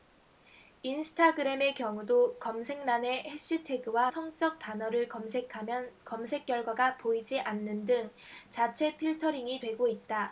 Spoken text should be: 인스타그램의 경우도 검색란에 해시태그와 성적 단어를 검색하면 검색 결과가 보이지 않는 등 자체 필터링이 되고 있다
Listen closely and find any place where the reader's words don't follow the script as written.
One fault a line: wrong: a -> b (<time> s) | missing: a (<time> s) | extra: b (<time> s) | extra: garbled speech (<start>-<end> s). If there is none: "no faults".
no faults